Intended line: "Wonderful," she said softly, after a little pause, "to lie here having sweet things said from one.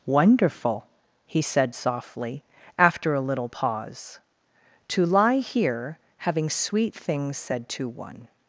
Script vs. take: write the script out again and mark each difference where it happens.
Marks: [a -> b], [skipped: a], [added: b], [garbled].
"Wonderful," [she -> he] said softly, after a little pause, "to lie here having sweet things said [from -> to] one.